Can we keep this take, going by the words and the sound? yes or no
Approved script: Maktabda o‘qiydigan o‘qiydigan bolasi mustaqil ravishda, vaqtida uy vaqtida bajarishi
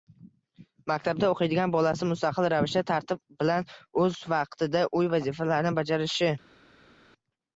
no